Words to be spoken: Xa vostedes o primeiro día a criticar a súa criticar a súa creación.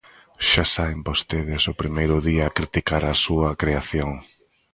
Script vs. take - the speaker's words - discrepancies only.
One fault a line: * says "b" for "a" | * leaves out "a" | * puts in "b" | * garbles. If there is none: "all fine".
* puts in "saen"
* leaves out "criticar a súa"